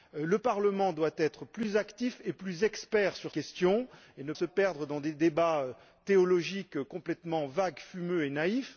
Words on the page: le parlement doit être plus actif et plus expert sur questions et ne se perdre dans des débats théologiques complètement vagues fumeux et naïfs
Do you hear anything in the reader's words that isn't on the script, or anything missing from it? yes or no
no